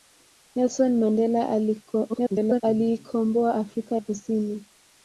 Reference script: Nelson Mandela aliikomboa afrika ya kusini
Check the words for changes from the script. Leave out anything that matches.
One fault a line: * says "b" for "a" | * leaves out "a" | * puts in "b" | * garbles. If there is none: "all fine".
* garbles
* leaves out "ya"